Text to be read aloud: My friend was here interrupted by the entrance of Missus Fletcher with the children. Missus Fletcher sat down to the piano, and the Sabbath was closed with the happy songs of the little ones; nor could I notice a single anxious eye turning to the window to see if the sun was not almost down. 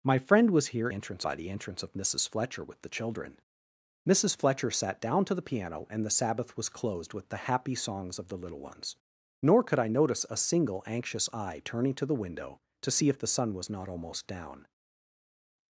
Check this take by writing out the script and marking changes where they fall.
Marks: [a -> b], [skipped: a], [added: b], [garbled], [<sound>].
My friend was here [interrupted -> entrance] by the entrance of Missus Fletcher with the children. Missus Fletcher sat down to the piano, and the Sabbath was closed with the happy songs of the little ones; nor could I notice a single anxious eye turning to the window to see if the sun was not almost down.